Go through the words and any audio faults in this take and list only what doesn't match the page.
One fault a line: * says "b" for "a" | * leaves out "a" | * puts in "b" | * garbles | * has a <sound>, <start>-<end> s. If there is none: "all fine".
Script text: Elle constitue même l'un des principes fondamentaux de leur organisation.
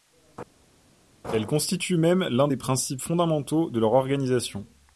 all fine